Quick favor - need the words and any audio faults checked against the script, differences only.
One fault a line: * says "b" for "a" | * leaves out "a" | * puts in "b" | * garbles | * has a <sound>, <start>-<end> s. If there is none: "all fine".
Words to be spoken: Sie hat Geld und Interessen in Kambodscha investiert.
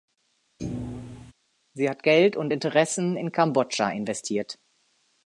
* has a thud, 0.6-1.3 s